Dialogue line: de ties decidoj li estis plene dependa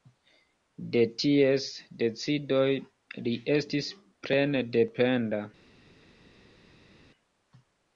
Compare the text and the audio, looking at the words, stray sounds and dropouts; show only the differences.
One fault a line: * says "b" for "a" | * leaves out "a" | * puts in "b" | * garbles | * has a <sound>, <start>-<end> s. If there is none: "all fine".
all fine